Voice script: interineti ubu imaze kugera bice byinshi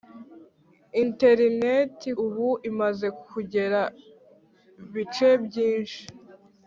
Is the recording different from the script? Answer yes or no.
no